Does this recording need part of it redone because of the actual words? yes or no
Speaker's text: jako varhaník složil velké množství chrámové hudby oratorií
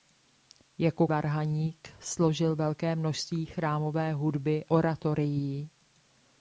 no